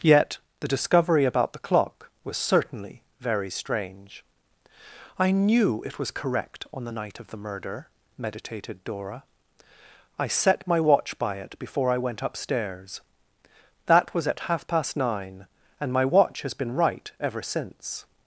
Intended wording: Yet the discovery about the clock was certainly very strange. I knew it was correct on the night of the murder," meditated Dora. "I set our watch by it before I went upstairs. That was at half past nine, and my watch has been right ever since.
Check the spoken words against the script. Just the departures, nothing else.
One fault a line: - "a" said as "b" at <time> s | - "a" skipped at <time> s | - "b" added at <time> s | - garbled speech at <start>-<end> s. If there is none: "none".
- "our" said as "my" at 10.7 s